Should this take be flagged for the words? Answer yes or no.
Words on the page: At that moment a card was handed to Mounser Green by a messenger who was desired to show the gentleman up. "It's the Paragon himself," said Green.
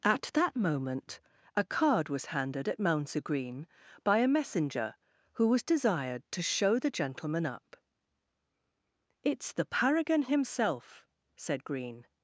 yes